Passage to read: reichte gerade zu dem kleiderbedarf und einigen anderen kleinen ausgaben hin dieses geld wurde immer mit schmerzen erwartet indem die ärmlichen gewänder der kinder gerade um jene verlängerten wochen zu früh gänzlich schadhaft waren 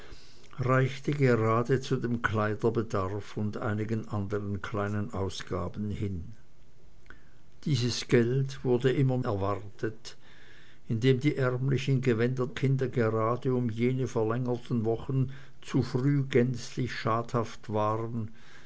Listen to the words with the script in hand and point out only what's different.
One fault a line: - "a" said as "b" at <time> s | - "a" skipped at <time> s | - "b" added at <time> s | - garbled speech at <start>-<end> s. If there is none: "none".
- "mit schmerzen" skipped at 9.2 s
- "der" skipped at 12.5 s